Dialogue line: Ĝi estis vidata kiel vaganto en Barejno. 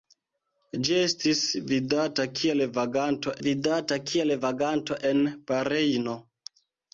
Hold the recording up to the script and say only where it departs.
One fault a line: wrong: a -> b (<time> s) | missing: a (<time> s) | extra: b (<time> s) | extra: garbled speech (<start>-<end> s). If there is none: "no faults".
extra: vidata kiel vaganto (3.5 s)